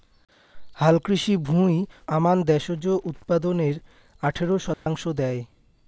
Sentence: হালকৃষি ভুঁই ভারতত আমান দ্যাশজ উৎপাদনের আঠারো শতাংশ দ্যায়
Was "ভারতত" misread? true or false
true